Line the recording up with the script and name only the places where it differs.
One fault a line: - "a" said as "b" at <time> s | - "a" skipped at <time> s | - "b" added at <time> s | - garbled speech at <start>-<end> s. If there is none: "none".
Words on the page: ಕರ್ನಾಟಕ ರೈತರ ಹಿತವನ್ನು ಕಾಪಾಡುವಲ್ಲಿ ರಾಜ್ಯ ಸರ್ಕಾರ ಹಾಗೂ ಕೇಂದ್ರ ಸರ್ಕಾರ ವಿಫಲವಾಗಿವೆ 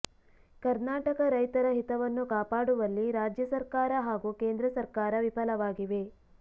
none